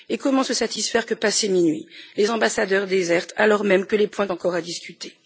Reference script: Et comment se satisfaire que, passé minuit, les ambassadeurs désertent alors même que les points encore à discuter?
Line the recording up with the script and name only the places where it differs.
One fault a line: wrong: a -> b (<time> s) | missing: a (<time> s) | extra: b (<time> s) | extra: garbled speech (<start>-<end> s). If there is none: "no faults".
no faults